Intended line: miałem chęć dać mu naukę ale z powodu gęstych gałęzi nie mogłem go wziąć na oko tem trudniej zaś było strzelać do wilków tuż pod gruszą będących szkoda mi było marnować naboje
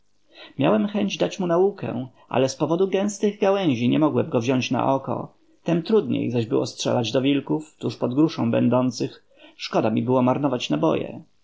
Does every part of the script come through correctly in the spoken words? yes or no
yes